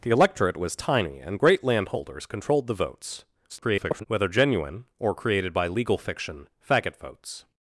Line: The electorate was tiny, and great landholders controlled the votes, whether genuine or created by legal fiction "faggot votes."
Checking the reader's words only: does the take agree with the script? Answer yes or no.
no